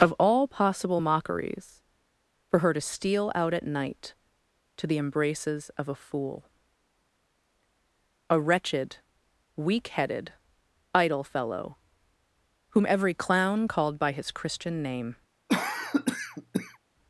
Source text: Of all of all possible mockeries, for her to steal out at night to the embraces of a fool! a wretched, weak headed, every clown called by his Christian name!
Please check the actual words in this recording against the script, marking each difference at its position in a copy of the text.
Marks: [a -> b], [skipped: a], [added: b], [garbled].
Of all [skipped: of all] possible mockeries, for her to steal out at night to the embraces of a fool! a wretched, weak headed, [added: idle fellow whom] every clown called by his Christian name!